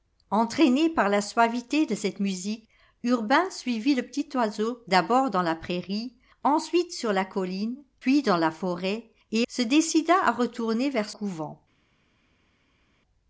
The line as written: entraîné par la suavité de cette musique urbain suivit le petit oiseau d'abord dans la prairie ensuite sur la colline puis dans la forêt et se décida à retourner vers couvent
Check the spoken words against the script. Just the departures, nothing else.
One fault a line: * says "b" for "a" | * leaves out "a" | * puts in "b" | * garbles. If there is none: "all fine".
all fine